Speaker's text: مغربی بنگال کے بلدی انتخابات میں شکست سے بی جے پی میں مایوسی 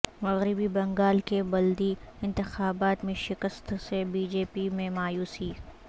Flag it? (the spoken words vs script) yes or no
no